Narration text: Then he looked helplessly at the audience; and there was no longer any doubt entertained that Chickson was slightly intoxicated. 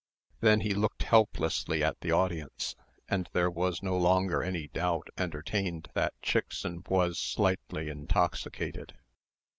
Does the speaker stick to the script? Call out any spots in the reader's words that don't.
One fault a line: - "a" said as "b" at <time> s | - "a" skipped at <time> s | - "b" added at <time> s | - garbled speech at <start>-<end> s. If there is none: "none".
none